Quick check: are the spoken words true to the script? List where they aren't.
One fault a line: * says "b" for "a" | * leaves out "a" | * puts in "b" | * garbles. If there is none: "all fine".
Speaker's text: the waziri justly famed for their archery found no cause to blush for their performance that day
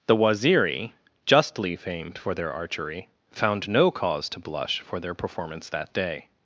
all fine